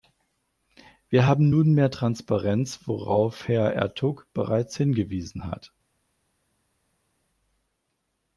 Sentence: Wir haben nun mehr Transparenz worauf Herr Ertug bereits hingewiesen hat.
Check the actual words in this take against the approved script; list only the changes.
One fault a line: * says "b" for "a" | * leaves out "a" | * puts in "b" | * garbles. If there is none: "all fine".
all fine